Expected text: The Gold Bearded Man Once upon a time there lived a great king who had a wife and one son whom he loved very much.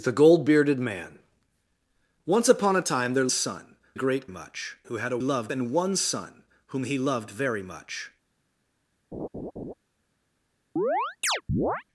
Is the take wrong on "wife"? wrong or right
wrong